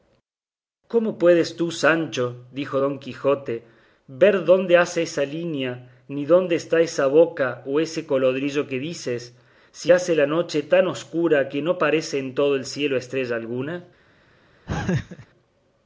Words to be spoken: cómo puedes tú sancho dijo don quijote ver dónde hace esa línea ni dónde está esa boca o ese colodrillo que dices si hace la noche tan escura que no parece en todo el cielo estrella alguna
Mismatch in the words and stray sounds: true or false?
true